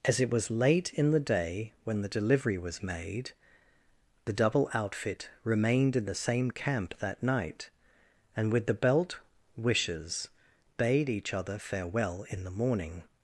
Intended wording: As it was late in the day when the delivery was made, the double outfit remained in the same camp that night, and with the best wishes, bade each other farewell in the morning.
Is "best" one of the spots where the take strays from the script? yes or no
yes